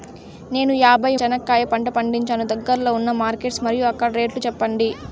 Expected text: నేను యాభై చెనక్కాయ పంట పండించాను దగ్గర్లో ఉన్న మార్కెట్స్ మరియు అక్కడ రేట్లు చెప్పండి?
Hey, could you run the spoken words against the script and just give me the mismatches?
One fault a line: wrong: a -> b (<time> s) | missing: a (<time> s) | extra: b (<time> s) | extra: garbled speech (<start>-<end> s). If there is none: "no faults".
no faults